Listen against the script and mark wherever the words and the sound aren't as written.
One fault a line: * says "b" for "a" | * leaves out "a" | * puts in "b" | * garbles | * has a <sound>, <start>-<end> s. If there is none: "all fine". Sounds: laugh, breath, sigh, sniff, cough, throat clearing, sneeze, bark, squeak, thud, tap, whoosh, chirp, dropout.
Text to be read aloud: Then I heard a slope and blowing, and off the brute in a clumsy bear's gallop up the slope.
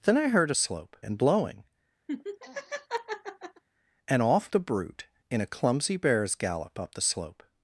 * has a laugh, 2.1-3.6 s